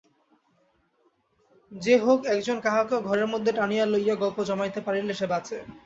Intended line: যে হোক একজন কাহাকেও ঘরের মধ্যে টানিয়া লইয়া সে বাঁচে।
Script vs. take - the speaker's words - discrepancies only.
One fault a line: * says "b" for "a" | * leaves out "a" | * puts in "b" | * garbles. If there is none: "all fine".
* puts in "গল্প জমাইতে পারিলে"